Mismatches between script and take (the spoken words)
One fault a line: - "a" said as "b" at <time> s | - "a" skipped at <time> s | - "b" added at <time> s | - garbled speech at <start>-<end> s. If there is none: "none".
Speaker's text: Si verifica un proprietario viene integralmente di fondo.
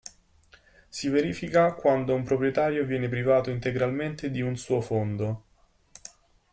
- "quando" added at 1.8 s
- "privato" added at 3.1 s
- "un suo" added at 4.4 s